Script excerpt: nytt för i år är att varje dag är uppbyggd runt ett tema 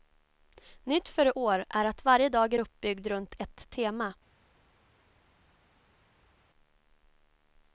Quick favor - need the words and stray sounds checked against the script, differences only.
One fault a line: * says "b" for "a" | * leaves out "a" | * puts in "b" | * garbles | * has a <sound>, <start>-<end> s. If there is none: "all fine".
all fine